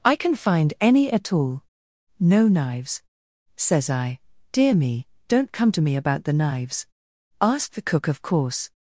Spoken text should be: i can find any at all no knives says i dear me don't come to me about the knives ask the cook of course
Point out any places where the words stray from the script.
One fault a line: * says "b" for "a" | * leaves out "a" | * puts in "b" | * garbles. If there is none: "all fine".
all fine